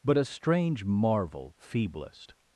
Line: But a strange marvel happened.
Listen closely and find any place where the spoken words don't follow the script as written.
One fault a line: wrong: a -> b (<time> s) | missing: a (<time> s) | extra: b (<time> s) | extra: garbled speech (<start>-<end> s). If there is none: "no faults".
wrong: happened -> feeblest (1.6 s)